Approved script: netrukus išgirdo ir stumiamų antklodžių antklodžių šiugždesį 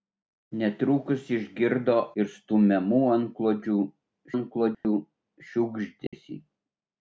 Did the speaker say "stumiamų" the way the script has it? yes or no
yes